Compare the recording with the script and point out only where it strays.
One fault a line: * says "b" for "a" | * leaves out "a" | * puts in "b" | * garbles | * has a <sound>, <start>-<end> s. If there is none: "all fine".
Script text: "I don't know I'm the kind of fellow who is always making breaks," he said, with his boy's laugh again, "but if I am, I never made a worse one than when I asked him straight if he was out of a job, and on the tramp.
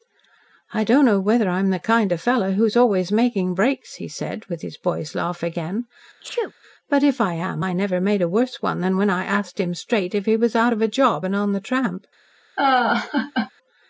* puts in "whether"
* has a sneeze, 6.2-6.5 s
* has a laugh, 12.6-13.5 s